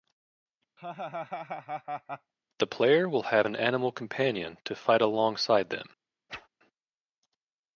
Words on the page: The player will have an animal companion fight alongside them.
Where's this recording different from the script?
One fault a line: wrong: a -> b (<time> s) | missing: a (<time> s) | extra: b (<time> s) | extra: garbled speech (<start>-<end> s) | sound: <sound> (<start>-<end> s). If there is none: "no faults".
sound: laugh (0.8-2.3 s)
extra: to (4.6 s)
sound: whoosh (6.3-6.5 s)